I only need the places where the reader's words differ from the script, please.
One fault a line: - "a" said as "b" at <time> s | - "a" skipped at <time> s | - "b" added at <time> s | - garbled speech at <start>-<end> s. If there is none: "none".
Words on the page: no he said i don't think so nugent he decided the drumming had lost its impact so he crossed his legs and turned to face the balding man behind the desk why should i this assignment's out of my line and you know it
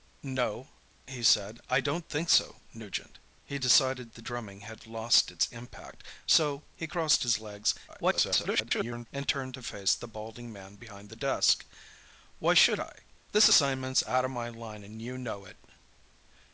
- garbled speech at 7.9-9.1 s